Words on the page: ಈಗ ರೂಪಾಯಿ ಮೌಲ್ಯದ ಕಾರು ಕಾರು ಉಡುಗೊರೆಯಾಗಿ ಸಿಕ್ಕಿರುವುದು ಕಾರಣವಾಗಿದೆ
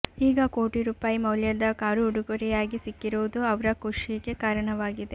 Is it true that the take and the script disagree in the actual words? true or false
true